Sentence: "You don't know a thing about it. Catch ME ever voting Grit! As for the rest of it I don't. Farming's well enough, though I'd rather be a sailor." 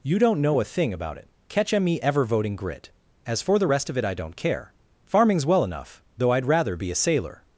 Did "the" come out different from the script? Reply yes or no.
no